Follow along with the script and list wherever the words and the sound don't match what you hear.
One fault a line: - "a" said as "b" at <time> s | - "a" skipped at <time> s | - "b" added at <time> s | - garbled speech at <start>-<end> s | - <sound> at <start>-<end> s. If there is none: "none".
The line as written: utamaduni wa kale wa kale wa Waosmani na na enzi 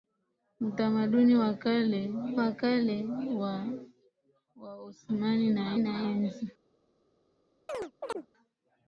- chirp at 7.7-8.3 s